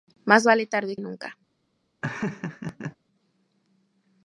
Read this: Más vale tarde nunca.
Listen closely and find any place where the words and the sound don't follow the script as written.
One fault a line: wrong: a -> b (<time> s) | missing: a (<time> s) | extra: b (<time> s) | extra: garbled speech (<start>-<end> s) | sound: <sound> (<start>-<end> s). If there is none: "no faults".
sound: laugh (2.0-3.0 s)